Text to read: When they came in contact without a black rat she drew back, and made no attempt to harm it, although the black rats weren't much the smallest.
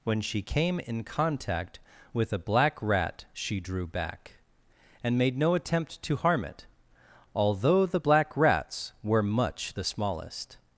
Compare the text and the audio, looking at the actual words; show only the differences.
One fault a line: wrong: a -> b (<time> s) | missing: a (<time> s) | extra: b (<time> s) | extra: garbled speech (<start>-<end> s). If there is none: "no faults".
wrong: they -> she (0.2 s)
wrong: without -> with (2.1 s)
wrong: weren't -> were (9.0 s)